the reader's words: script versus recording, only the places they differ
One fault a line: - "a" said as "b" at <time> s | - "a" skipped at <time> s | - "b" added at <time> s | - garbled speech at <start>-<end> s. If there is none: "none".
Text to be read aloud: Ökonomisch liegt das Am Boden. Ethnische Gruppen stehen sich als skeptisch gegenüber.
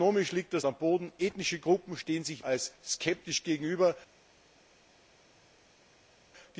none